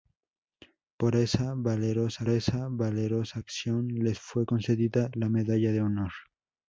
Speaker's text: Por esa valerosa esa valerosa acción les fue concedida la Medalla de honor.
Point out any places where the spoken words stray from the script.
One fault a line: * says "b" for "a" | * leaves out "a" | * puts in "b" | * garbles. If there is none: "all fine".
all fine